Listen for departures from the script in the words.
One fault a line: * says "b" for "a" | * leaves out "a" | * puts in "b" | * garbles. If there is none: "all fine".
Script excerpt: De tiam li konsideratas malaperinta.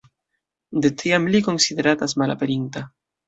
all fine